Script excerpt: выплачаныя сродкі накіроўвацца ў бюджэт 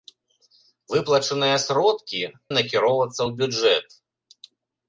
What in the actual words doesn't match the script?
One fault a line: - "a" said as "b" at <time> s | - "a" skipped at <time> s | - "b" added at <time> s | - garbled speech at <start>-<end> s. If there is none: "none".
none